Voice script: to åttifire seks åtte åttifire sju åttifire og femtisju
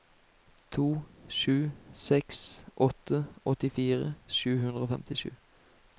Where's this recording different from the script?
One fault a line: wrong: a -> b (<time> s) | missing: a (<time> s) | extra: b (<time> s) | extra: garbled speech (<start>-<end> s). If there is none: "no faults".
wrong: åttifire -> sju (1.4 s)
wrong: åttifire -> hundre (4.7 s)